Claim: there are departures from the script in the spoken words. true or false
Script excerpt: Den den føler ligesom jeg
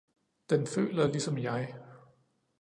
true